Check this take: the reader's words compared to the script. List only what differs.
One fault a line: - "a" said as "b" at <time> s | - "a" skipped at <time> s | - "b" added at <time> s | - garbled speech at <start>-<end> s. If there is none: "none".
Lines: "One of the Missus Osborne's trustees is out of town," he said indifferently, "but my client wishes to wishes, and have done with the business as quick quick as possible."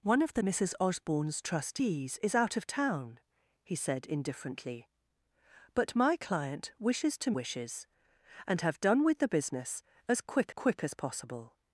none